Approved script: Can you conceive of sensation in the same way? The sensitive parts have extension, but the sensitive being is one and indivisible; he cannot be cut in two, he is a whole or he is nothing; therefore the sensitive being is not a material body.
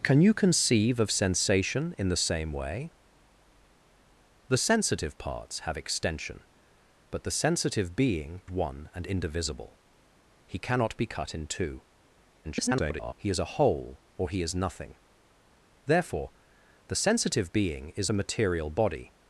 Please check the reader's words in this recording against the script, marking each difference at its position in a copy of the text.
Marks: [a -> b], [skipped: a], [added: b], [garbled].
Can you conceive of sensation in the same way? The sensitive parts have extension, but the sensitive being [skipped: is] one and indivisible; he cannot be cut in two, [garbled] he is a whole or he is nothing; therefore the sensitive being is [skipped: not] a material body.